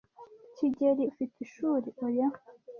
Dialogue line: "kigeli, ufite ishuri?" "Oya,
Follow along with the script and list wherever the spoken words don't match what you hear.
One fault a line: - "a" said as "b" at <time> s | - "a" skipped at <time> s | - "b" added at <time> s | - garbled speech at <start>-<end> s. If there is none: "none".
none